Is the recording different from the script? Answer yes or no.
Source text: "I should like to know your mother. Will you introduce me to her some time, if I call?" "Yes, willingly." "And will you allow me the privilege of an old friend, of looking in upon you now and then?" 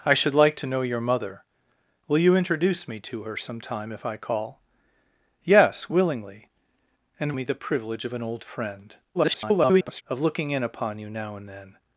yes